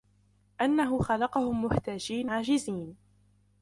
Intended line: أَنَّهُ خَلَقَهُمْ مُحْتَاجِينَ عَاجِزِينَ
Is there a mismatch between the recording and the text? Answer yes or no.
no